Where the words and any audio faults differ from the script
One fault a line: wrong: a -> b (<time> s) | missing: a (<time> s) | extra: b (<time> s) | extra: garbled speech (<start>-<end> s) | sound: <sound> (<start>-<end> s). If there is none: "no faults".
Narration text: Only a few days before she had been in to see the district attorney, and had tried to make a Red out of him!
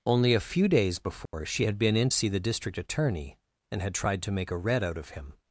sound: dropout (1.3-1.3 s)
missing: to (2.1 s)